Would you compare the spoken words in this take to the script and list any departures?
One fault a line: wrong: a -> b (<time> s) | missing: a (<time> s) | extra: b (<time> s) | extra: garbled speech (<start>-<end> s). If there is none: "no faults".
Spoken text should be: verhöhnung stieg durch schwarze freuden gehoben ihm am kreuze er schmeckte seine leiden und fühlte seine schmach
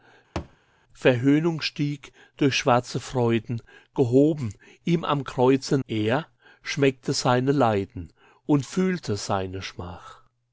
no faults